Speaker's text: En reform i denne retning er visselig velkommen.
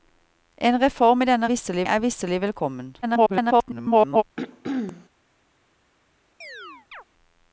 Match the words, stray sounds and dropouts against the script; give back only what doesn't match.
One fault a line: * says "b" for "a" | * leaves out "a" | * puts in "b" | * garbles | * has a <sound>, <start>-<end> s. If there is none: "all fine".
* says "visselig" for "retning"
* garbles
* has a throat clearing, 4.4-5.1 s
* has a chirp, 6.4-7.0 s